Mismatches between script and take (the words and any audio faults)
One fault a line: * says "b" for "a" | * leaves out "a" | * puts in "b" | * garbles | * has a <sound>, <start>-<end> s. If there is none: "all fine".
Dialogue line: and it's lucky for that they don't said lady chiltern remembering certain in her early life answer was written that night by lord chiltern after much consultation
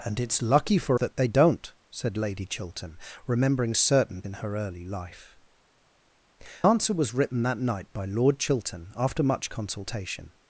all fine